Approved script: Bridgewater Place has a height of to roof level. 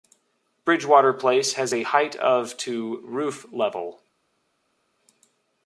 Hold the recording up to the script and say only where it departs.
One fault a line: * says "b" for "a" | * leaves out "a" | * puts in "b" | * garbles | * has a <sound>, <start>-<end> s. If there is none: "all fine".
all fine